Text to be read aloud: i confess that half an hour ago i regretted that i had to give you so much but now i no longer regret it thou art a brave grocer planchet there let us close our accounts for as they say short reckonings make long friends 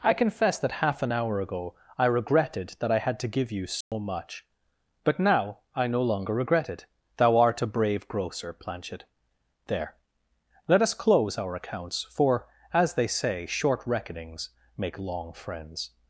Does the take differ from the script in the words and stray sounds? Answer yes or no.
yes